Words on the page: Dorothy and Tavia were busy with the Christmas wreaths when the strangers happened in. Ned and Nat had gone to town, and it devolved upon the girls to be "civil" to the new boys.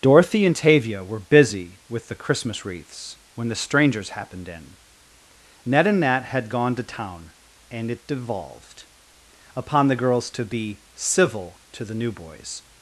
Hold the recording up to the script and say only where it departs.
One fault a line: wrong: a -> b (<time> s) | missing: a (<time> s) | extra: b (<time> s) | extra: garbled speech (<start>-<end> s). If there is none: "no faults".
no faults